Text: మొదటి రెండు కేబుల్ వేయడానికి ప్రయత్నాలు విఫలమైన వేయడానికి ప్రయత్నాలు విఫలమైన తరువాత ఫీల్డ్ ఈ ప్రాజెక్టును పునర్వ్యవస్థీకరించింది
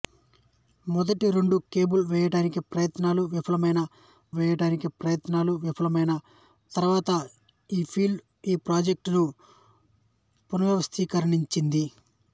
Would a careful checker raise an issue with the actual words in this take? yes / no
no